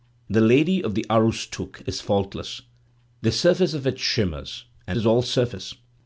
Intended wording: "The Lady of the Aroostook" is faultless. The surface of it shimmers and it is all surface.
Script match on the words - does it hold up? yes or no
no